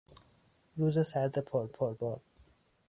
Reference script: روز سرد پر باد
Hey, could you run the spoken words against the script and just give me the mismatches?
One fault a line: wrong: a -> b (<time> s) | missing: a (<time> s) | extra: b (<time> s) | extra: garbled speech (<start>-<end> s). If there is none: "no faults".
extra: پر (1.7 s)